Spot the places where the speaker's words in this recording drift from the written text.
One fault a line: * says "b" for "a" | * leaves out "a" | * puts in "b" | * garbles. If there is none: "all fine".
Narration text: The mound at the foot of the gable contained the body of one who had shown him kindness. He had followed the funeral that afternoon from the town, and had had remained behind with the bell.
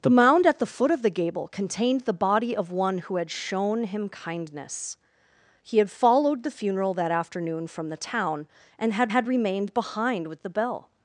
all fine